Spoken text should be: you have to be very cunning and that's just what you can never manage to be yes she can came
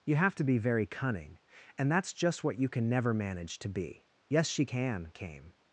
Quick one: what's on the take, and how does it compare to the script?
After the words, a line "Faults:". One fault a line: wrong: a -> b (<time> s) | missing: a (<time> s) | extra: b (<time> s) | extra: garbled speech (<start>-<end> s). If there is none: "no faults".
you have to be very cunning and that's just what you can never manage to be yes she can came
Faults:
no faults